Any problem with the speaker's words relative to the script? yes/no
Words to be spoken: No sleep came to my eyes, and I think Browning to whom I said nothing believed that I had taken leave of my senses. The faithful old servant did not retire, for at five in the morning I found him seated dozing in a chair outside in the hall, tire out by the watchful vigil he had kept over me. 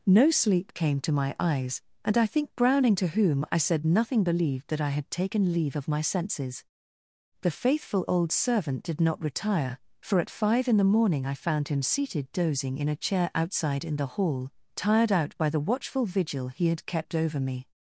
yes